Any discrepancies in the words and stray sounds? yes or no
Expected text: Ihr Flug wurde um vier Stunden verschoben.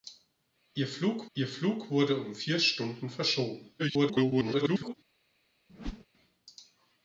yes